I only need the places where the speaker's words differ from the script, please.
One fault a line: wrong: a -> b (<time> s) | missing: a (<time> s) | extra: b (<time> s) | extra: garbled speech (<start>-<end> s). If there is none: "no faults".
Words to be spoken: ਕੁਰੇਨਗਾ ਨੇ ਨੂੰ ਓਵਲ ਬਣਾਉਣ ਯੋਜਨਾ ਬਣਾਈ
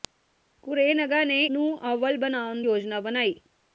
no faults